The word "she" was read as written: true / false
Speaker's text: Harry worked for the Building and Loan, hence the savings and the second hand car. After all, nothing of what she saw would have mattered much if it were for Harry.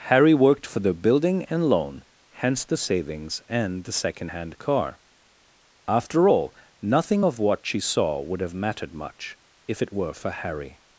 true